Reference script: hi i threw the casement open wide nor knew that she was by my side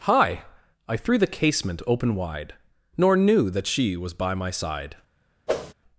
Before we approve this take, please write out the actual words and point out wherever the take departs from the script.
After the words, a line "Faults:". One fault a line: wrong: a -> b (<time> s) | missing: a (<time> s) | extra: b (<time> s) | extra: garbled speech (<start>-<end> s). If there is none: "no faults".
hi i threw the casement open wide nor knew that she was by my side
Faults:
no faults